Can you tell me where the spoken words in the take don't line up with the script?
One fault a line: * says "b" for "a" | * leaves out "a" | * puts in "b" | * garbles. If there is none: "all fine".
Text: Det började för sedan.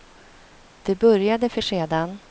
all fine